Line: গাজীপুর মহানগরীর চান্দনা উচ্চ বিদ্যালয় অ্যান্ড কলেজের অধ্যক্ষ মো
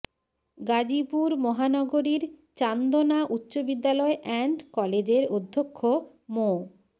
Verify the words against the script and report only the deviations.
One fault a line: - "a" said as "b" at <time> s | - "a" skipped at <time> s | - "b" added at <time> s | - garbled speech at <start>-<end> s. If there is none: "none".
none